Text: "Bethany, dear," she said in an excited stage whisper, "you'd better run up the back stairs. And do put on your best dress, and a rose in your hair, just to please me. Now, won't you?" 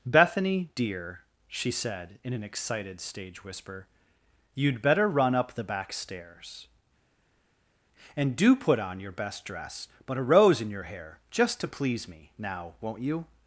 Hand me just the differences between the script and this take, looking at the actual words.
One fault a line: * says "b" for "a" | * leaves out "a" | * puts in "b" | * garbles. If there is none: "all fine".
* says "but" for "and"